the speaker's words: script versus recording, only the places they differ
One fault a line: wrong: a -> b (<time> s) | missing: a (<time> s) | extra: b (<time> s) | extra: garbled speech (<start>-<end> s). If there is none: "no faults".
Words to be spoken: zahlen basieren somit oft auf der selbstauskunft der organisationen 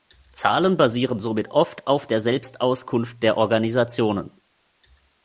no faults